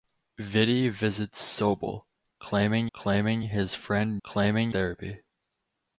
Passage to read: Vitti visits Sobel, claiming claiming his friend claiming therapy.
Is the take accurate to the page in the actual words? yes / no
yes